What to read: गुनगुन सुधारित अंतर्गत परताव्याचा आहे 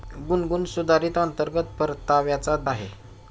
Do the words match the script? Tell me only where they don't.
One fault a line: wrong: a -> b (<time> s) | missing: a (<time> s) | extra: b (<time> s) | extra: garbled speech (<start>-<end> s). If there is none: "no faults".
no faults